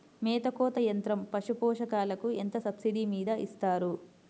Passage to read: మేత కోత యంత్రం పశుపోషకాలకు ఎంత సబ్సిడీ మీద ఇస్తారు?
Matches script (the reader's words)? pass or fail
pass